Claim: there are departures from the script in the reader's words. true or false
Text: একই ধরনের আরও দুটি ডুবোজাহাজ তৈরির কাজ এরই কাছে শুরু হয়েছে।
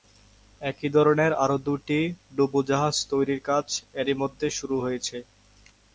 true